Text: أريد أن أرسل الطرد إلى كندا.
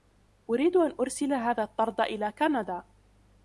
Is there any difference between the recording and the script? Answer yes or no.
yes